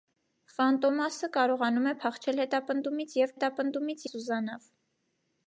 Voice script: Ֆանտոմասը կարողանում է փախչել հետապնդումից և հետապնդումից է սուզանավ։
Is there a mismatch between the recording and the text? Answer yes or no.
no